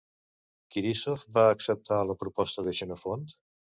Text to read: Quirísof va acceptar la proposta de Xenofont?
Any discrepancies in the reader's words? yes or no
no